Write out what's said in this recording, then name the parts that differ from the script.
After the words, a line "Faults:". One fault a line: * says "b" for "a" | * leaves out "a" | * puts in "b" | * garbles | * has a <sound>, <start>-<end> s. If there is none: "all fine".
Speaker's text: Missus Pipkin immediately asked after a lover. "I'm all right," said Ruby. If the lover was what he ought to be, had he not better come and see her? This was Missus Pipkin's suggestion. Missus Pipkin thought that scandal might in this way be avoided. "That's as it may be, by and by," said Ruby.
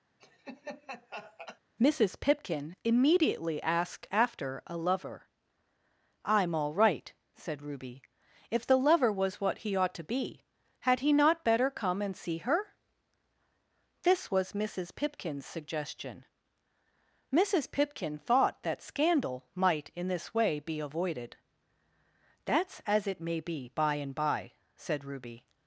Missus Pipkin immediately asked after a lover. "I'm all right," said Ruby. If the lover was what he ought to be, had he not better come and see her? This was Missus Pipkin's suggestion. Missus Pipkin thought that scandal might in this way be avoided. "That's as it may be, by and by," said Ruby.
Faults:
* has a laugh, 0.2-1.6 s